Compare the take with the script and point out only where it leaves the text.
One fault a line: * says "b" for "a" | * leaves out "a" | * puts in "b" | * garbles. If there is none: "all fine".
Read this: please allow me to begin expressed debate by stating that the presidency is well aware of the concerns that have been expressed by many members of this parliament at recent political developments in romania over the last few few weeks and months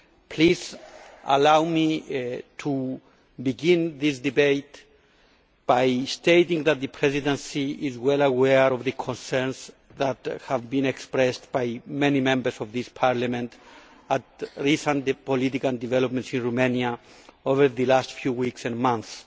* says "this" for "expressed"
* leaves out "few"